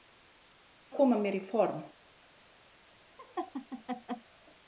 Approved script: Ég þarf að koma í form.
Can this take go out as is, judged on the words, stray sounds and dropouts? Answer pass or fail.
fail